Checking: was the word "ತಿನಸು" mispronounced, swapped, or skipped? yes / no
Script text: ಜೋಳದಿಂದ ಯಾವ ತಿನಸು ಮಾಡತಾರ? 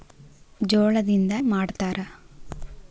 yes